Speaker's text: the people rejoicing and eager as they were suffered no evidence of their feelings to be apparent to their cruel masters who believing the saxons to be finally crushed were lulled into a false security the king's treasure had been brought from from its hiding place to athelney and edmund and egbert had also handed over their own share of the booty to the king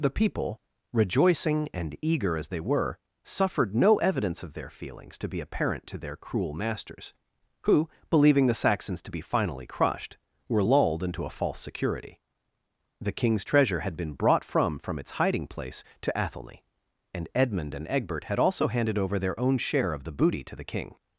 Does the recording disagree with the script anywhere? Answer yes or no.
no